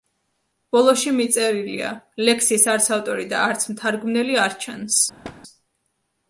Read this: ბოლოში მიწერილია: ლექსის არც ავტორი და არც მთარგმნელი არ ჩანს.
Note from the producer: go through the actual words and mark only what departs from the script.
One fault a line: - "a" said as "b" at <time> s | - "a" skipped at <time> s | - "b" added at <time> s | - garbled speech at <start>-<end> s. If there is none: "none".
none